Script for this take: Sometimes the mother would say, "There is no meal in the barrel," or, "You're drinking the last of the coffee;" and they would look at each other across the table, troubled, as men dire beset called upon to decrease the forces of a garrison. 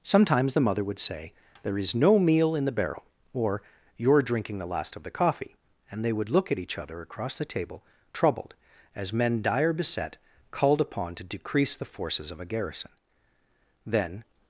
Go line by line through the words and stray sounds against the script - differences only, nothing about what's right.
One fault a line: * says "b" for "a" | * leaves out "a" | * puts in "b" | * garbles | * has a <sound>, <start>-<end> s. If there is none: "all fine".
* puts in "Then"